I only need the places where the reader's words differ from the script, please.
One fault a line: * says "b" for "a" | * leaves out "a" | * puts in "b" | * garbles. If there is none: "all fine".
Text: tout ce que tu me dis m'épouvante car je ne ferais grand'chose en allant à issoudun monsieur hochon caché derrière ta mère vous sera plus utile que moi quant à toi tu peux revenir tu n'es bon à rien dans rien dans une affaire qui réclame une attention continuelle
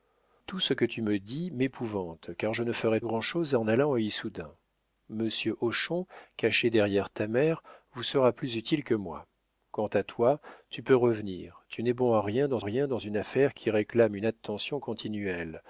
all fine